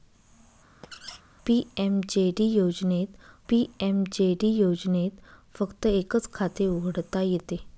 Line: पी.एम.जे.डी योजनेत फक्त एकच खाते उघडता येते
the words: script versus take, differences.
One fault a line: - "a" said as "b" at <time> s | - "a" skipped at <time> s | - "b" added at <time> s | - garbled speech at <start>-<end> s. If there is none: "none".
- "पी.एम.जे.डी योजनेत" added at 3.5 s